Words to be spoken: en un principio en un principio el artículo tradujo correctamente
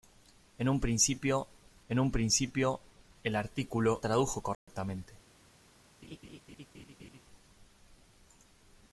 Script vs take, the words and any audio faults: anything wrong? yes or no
yes